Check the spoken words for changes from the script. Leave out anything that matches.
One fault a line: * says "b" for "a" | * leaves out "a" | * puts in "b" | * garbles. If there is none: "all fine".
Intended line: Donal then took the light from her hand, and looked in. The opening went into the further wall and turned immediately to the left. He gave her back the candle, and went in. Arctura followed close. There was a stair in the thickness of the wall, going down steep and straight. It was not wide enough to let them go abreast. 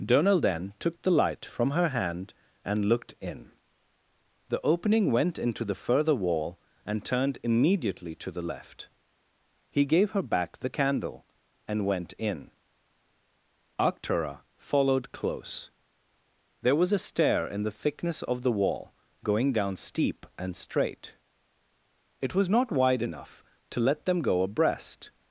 all fine